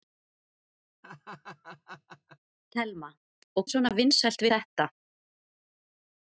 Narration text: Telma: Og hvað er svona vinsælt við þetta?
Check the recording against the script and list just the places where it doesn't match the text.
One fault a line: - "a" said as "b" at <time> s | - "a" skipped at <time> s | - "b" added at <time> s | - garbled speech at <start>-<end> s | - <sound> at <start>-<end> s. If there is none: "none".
- laugh at 1.0-2.4 s
- "hvað" skipped at 3.7 s
- "við" skipped at 4.4 s